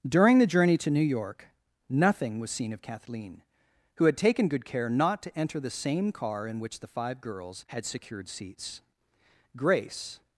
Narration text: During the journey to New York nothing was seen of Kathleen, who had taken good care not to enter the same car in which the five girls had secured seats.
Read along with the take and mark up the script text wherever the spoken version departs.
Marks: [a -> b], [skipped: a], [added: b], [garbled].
During the journey to New York nothing was seen of Kathleen, who had taken good care not to enter the same car in which the five girls had secured seats. [added: Grace]